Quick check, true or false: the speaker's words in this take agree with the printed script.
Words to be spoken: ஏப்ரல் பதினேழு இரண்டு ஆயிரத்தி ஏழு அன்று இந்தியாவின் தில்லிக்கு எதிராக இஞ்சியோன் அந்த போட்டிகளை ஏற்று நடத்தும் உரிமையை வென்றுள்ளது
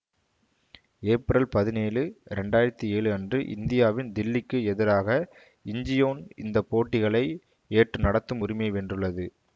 false